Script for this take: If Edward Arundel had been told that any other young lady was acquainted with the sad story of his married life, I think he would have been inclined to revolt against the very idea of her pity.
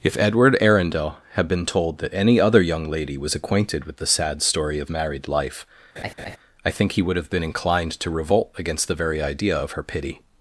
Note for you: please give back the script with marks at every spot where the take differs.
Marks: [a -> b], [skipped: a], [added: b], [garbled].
If Edward Arundel had been told that any other young lady was acquainted with the sad story of [skipped: his] married life, I think he would have been inclined to revolt against the very idea of her pity.